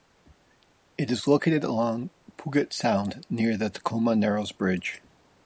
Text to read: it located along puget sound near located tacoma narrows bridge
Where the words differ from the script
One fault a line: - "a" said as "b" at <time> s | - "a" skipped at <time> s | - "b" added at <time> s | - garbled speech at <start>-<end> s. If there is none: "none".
- "is" added at 1.1 s
- "located" said as "the" at 3.5 s